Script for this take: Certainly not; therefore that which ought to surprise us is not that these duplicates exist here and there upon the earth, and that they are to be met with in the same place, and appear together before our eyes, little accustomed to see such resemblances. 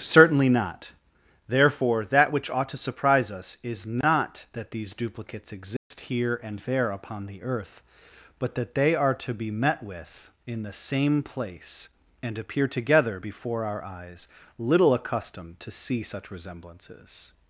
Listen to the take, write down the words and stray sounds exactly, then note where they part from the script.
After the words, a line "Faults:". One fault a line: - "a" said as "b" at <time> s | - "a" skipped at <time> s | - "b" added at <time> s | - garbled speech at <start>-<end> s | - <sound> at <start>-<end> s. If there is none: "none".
Certainly not; therefore that which ought to surprise us is not that these duplicates exist here and there upon the earth, but that they are to be met with in the same place, and appear together before our eyes, little accustomed to see such resemblances.
Faults:
- dropout at 5.8-5.9 s
- "and" said as "but" at 8.4 s